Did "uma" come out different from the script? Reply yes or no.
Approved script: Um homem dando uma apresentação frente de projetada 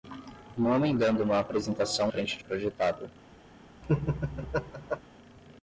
no